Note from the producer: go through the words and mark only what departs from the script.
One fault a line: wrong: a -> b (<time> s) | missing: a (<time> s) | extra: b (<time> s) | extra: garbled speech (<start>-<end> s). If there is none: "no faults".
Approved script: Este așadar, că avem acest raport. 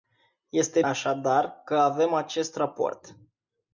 no faults